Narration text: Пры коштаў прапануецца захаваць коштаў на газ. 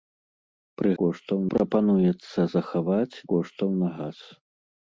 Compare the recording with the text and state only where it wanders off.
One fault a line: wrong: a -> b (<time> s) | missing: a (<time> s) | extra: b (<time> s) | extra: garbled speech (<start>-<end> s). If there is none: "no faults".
no faults